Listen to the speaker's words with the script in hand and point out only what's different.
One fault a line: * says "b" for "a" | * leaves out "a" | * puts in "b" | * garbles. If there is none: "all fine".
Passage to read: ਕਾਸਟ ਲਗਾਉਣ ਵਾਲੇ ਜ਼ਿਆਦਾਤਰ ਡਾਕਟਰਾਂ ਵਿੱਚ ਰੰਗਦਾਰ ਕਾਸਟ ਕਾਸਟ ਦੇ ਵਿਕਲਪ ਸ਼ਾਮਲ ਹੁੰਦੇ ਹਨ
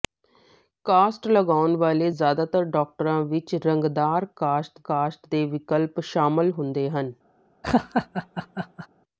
all fine